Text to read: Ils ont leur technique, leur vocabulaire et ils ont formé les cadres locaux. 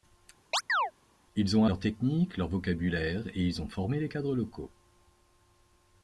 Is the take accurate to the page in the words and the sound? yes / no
no